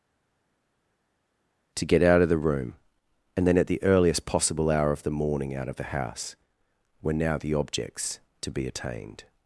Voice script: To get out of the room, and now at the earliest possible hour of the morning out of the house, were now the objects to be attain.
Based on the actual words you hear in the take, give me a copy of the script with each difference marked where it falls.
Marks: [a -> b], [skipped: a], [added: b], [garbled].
To get out of the room, and [now -> then] at the earliest possible hour of the morning out of the house, were now the objects to be [attain. -> attained]